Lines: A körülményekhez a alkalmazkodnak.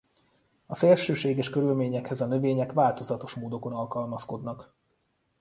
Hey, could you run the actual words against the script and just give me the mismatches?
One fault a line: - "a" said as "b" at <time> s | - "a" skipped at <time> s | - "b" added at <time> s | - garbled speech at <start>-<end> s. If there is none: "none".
- "szélsőséges" added at 0.8 s
- "növények változatos módokon" added at 2.2 s